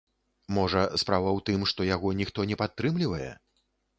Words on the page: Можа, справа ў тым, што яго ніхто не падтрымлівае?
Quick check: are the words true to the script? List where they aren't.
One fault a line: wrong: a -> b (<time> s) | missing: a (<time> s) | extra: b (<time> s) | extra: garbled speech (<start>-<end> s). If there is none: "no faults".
no faults